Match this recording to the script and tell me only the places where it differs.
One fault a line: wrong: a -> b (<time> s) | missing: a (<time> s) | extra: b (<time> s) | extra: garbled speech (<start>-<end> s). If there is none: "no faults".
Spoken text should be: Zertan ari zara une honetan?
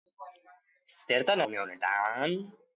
missing: ari zara (1.4 s)